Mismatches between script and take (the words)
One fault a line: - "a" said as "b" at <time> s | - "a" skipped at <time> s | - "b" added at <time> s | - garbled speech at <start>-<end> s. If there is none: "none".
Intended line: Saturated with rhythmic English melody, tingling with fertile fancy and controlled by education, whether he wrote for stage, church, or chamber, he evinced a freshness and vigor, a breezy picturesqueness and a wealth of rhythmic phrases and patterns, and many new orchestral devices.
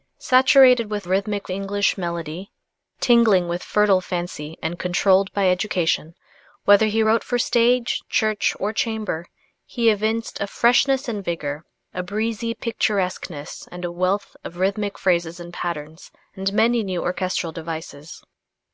none